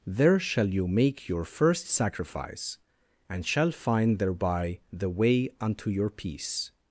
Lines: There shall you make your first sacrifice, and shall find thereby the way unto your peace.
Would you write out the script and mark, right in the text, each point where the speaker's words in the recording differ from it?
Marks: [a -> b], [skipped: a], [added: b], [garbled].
There shall you make your first sacrifice, and shall find thereby the way unto your peace.